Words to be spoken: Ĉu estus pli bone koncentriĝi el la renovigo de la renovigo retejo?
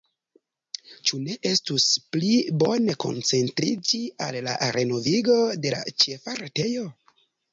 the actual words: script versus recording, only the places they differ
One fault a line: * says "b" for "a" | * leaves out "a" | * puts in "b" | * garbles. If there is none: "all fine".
* puts in "ne"
* says "al" for "el"
* says "ĉefa" for "renovigo"